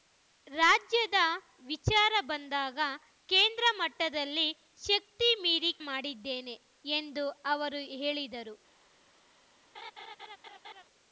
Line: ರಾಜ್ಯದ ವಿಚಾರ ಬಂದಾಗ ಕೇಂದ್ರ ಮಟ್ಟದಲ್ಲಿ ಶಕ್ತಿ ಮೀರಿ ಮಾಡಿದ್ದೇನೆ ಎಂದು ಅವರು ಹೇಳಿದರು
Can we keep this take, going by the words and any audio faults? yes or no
no